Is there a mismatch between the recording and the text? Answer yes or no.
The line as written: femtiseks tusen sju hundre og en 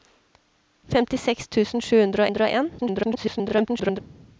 yes